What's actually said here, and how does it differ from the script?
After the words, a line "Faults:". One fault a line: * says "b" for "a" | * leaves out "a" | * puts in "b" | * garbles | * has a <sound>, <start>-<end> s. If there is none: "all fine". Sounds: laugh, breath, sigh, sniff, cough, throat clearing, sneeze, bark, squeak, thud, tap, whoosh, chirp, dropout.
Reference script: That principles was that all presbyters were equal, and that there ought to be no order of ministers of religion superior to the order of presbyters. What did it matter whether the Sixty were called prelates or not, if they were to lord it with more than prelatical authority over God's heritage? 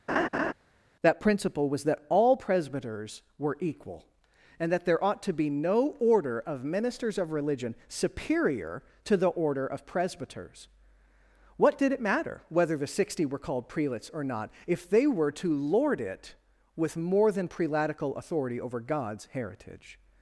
That principle was that all presbyters were equal, and that there ought to be no order of ministers of religion superior to the order of presbyters. What did it matter whether the Sixty were called prelates or not, if they were to lord it with more than prelatical authority over God's heritage?
Faults:
* has a laugh, 0.1-0.5 s
* says "principle" for "principles"